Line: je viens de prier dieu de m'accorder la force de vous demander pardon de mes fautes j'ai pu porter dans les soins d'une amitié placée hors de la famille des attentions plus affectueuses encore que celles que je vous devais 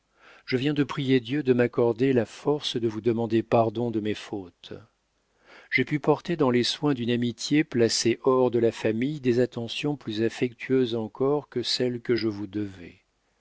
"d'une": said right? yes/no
yes